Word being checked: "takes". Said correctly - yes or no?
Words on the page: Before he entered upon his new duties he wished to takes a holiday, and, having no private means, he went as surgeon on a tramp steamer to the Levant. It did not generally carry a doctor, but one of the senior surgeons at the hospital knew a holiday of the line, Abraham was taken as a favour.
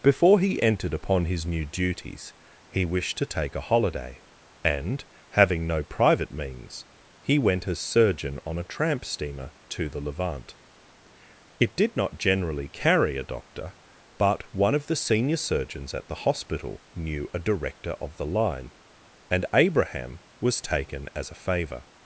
no